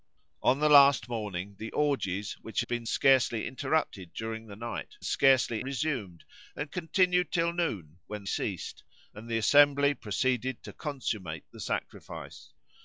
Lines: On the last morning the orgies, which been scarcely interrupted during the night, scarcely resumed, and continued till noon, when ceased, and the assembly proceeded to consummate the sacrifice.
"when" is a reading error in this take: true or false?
false